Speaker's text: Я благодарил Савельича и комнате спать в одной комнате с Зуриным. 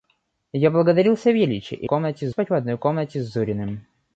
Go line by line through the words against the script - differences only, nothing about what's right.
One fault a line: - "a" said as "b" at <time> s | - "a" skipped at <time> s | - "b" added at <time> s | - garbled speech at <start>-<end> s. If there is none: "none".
none